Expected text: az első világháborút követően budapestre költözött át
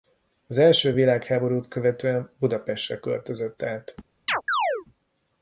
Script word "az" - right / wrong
right